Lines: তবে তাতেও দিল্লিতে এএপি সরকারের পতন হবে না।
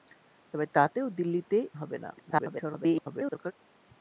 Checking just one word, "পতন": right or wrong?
wrong